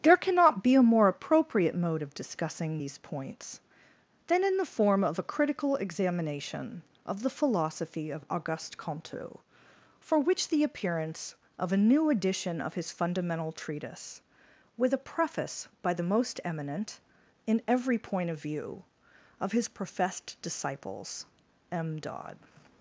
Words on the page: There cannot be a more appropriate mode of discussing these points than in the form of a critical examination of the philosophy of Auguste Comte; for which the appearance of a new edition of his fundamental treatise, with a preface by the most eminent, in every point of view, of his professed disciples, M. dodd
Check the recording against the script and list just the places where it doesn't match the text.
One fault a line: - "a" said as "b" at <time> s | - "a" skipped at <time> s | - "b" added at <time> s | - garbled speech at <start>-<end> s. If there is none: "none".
none